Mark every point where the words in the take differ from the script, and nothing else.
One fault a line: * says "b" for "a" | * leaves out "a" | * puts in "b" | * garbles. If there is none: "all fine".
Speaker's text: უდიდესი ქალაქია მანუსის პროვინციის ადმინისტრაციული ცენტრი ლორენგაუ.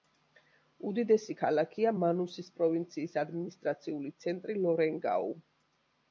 all fine